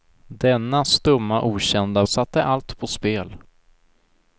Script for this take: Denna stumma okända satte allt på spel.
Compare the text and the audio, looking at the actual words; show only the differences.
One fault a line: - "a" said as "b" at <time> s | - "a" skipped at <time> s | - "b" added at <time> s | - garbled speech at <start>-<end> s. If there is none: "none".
none